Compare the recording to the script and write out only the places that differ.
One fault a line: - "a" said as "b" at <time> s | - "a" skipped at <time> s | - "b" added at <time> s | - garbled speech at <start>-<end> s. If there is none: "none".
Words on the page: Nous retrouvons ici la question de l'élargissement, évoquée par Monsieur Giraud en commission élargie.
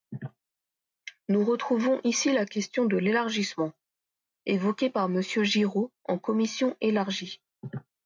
none